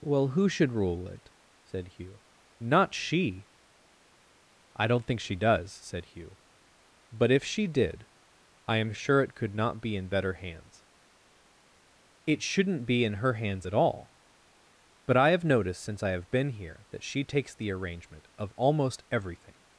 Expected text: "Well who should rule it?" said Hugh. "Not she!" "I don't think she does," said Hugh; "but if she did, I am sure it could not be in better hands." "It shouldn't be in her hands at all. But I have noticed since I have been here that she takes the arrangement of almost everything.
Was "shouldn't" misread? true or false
false